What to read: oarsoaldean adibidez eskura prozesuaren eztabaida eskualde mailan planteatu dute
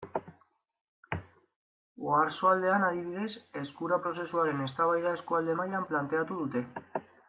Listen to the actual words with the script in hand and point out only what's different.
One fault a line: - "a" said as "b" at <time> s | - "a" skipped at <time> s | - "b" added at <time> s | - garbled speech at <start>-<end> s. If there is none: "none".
none